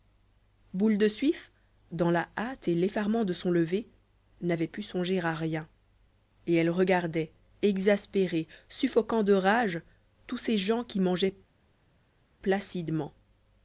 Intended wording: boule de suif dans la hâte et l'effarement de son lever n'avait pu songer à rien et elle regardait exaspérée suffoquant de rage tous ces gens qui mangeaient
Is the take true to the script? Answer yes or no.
yes